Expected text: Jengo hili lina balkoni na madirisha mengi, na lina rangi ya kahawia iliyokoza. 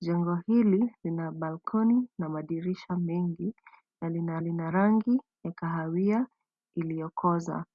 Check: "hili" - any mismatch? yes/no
no